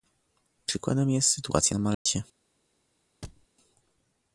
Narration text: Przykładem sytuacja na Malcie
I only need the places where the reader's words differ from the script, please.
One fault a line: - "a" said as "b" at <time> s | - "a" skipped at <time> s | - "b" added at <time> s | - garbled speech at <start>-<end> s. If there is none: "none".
- "jest" added at 1.1 s